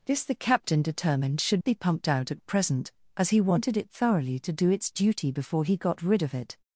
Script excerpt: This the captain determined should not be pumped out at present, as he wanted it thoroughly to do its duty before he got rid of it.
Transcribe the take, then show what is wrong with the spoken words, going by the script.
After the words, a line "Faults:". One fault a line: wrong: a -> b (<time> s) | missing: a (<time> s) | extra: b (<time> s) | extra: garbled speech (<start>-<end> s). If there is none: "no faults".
This the captain determined should be pumped out at present, as he wanted it thoroughly to do its duty before he got rid of it.
Faults:
missing: not (1.6 s)